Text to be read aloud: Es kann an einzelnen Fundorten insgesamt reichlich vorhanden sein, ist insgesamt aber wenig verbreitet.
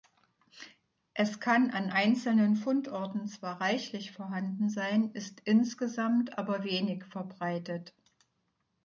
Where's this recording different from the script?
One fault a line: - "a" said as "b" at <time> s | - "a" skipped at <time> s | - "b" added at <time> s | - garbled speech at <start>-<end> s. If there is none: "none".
- "insgesamt" said as "zwar" at 3.3 s